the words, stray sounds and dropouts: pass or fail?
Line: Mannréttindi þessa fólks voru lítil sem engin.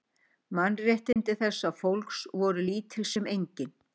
fail